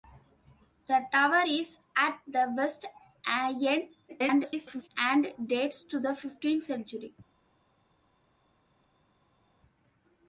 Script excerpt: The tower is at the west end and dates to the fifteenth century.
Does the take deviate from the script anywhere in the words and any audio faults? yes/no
yes